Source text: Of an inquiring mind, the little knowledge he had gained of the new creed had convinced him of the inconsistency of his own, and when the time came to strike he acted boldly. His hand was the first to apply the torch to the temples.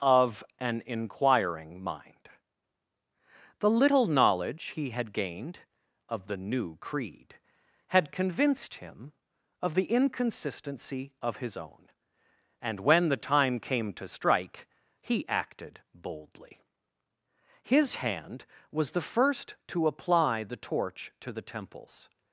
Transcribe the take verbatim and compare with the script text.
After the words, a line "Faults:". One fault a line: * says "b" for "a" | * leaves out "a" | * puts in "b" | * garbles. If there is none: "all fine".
Of an inquiring mind, the little knowledge he had gained of the new creed had convinced him of the inconsistency of his own, and when the time came to strike he acted boldly. His hand was the first to apply the torch to the temples.
Faults:
all fine